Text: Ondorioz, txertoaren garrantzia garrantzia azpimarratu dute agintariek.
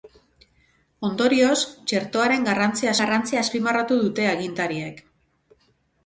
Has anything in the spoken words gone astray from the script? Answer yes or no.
no